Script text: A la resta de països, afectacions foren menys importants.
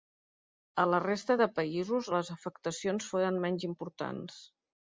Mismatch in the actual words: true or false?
true